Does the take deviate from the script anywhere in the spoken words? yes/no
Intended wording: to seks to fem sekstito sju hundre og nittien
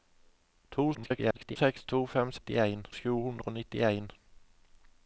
yes